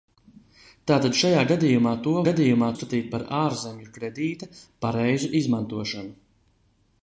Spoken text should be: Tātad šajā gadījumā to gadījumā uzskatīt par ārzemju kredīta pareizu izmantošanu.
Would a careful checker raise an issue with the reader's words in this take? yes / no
no